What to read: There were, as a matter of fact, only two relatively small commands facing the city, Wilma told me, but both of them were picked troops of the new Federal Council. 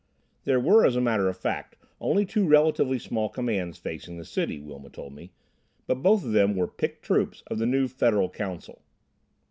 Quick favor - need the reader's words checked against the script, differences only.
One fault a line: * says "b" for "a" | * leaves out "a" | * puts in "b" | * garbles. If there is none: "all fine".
all fine